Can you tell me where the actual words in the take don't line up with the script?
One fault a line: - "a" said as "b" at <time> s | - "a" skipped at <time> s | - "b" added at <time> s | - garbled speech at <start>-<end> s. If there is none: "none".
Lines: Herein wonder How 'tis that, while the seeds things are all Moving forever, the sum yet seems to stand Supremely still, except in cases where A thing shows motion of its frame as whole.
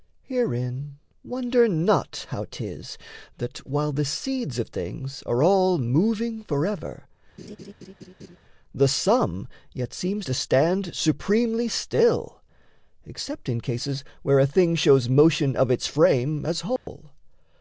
- "not" added at 1.7 s
- "of" added at 4.6 s